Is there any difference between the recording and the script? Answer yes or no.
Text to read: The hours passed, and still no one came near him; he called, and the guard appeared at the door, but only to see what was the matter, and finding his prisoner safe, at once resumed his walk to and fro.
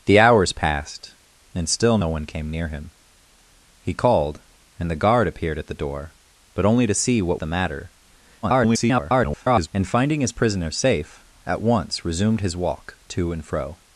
yes